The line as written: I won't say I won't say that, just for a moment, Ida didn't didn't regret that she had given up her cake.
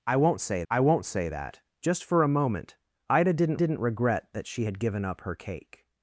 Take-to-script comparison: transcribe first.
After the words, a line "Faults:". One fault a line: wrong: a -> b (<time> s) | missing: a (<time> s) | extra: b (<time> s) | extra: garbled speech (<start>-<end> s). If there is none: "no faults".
I won't say I won't say that, just for a moment, Ida didn't didn't regret that she had given up her cake.
Faults:
no faults